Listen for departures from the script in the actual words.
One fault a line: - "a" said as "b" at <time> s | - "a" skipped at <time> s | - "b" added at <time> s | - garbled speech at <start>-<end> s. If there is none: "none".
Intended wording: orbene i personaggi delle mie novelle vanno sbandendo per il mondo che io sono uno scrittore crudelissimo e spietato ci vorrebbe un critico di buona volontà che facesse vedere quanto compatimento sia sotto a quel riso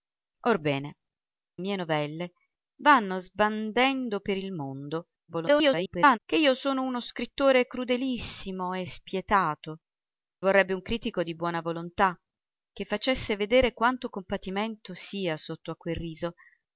- "i personaggi delle" skipped at 1.0 s
- garbled speech at 5.3-6.2 s
- "ci" skipped at 9.8 s